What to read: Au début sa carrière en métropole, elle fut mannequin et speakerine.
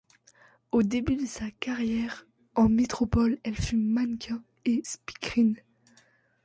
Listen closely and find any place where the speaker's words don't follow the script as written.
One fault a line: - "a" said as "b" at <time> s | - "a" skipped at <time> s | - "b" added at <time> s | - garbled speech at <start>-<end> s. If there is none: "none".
- "de" added at 1.1 s